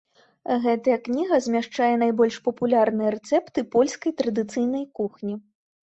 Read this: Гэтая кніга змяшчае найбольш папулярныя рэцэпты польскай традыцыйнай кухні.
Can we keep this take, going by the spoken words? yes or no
yes